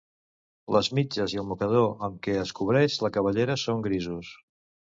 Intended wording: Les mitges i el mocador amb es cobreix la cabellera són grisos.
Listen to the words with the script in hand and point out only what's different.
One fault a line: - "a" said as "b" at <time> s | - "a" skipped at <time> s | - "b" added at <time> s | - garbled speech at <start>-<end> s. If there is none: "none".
- "què" added at 2.3 s